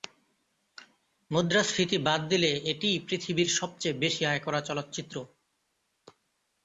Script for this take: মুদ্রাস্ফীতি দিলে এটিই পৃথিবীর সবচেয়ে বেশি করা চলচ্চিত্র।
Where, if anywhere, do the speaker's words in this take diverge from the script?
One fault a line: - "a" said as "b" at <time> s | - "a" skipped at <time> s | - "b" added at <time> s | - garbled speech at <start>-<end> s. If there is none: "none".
- "বাদ" added at 2.1 s
- "আয়" added at 4.2 s